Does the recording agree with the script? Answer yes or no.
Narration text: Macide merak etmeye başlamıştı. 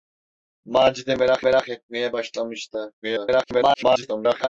no